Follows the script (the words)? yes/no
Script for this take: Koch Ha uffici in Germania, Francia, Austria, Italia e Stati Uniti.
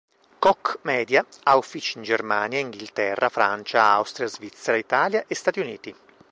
no